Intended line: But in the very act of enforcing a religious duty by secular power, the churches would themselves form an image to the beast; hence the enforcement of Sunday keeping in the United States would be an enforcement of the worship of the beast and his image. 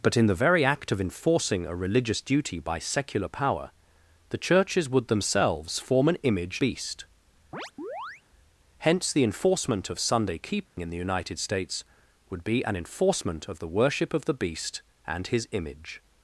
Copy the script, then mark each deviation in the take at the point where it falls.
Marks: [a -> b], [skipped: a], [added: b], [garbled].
But in the very act of enforcing a religious duty by secular power, the churches would themselves form an image [skipped: to the] beast; hence the enforcement of Sunday keeping in the United States would be an enforcement of the worship of the beast and his image.